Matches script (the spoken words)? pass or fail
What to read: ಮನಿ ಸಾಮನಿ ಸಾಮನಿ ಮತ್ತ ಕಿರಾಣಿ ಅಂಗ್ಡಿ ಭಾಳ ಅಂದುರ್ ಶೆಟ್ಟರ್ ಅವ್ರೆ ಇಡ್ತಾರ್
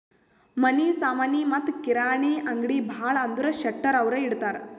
fail